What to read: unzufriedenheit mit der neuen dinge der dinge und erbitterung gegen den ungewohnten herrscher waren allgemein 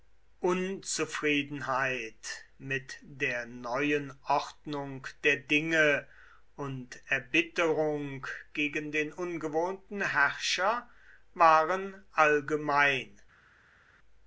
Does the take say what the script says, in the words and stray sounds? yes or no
no